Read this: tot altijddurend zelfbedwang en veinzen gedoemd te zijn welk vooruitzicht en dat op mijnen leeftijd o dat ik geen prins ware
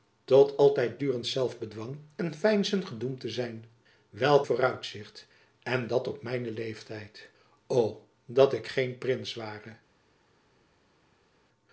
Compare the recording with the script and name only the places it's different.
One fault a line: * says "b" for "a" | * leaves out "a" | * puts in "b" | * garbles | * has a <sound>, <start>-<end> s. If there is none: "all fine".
all fine